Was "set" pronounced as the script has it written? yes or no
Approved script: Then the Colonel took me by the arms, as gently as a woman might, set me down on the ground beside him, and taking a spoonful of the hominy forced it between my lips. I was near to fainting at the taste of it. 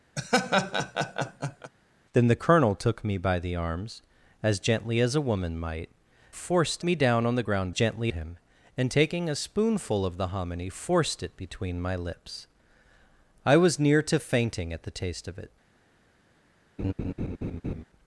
no